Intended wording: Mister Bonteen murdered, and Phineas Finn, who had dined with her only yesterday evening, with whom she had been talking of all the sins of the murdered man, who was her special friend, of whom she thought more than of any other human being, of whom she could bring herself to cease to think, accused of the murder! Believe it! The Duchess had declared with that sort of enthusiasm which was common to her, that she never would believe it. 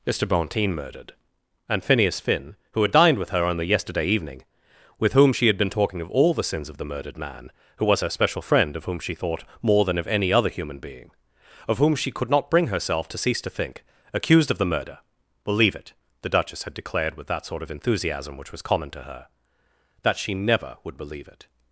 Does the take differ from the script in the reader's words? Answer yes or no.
yes